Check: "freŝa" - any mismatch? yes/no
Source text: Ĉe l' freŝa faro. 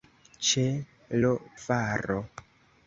yes